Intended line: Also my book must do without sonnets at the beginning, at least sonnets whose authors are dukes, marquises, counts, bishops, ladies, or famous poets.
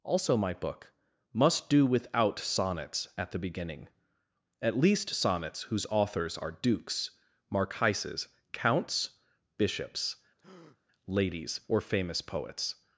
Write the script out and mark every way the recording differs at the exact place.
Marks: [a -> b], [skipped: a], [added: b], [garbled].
Also my book must do without sonnets at the beginning, at least sonnets whose authors are dukes, marquises, counts, bishops, ladies, or famous poets.